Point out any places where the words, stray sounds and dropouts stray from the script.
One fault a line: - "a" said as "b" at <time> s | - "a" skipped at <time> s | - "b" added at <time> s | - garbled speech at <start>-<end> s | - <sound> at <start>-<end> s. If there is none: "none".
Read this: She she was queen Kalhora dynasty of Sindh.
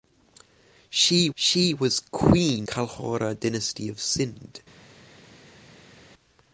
none